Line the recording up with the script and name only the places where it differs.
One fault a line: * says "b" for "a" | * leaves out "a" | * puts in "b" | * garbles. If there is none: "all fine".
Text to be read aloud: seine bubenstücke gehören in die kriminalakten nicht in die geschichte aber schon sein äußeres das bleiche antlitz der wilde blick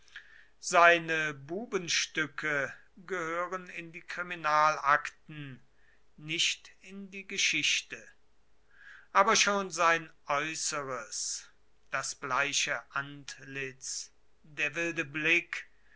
all fine